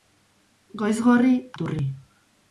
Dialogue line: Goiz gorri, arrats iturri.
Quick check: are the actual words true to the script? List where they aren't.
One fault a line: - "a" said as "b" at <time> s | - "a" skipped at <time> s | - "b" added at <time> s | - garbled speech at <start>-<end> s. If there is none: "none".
- "arrats" skipped at 1.4 s